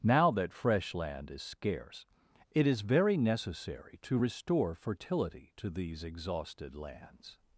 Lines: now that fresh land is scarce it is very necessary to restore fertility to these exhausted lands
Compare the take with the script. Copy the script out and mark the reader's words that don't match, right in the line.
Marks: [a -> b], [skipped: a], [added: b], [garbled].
now that fresh land is scarce it is very necessary to restore fertility to these exhausted lands